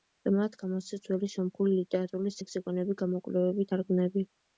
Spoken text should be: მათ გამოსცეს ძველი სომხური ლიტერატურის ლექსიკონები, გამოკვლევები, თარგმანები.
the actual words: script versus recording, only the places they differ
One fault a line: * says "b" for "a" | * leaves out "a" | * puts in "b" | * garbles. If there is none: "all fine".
all fine